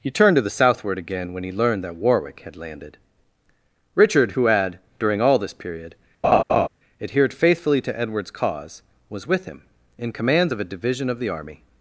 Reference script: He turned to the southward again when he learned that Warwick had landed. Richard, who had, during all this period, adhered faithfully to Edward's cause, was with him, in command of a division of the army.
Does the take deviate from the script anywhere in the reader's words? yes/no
yes